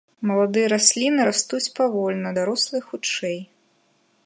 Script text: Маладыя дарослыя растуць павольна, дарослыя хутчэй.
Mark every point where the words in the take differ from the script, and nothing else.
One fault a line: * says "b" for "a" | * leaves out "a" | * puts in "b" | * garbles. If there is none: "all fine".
* says "расліны" for "дарослыя"